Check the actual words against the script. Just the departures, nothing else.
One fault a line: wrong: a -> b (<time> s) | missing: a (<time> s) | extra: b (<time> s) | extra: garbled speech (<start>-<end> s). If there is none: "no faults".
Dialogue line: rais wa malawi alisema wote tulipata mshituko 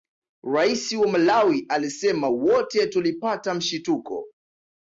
no faults